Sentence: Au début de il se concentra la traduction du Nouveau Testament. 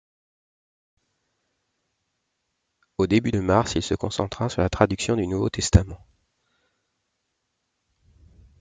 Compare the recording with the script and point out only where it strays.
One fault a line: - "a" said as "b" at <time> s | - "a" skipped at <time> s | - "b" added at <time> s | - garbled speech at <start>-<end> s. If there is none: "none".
- "mars" added at 3.4 s
- "sur" added at 4.5 s